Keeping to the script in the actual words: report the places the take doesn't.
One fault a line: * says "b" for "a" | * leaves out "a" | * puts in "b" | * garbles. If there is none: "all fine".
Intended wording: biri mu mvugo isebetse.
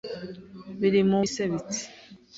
* leaves out "mvugo"